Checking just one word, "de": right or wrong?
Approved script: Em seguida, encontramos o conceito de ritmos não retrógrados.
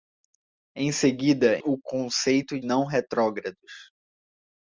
wrong